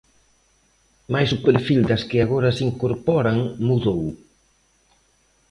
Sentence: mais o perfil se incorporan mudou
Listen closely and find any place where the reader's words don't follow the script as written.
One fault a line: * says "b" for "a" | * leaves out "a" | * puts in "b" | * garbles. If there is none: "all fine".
* puts in "das que agora"